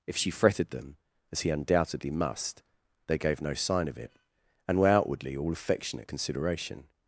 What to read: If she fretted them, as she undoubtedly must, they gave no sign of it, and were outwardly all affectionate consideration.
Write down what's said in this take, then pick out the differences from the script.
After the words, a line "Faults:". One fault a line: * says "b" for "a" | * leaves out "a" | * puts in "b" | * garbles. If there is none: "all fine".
If she fretted them, as he undoubtedly must, they gave no sign of it, and were outwardly all affectionate consideration.
Faults:
* says "he" for "she"